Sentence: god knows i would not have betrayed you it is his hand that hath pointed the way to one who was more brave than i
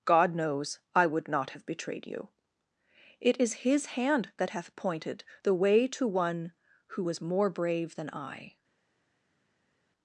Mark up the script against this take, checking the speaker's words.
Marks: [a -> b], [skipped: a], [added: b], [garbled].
god knows i would not have betrayed you it is his hand that hath pointed the way to one who was more brave than i